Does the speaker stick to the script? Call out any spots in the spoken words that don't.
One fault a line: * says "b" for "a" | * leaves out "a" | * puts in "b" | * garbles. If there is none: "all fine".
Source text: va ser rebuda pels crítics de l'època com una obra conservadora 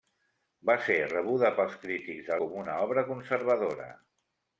* leaves out "l'època"